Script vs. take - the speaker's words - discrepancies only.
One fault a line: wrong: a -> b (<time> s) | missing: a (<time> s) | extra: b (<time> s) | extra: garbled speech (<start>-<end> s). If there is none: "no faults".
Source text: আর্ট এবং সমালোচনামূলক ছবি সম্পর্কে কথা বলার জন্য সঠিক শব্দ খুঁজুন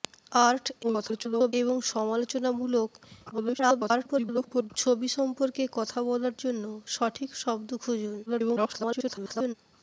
extra: garbled speech (0.8-1.5 s)
extra: garbled speech (3.3-4.7 s)
extra: garbled speech (8.3-9.5 s)